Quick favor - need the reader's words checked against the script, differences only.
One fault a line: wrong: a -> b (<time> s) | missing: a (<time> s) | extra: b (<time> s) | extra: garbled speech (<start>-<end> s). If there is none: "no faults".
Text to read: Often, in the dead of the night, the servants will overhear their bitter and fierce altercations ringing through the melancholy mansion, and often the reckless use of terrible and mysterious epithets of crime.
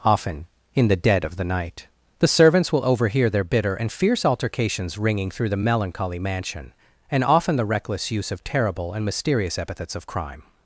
no faults